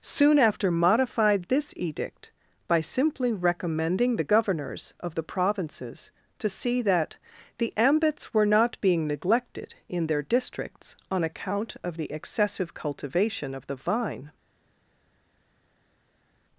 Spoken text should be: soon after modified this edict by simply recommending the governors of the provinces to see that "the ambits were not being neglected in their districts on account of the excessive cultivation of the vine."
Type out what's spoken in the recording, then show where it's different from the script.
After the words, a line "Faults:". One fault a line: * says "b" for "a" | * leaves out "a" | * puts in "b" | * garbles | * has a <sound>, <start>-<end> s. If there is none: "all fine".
soon after modified this edict by simply recommending the governors of the provinces to see that "the ambits were not being neglected in their districts on account of the excessive cultivation of the vine."
Faults:
all fine